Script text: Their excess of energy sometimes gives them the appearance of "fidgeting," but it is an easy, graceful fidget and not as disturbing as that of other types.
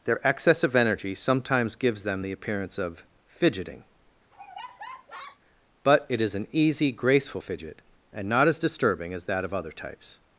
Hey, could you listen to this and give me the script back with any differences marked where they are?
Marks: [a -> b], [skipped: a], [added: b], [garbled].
Their excess of energy sometimes gives them the appearance of "fidgeting," but it is an easy, graceful fidget and not as disturbing as that of other types.